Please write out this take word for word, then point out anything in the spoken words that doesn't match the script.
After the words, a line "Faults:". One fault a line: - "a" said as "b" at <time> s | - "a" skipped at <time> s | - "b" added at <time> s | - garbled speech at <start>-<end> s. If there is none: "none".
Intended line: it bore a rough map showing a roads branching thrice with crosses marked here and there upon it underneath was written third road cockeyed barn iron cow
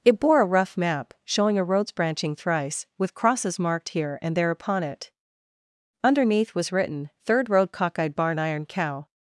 it bore a rough map showing a roads branching thrice with crosses marked here and there upon it underneath was written third road cockeyed barn iron cow
Faults:
none